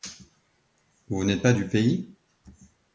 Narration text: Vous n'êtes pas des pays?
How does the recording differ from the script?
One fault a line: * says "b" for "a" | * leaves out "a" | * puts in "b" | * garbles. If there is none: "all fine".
* says "du" for "des"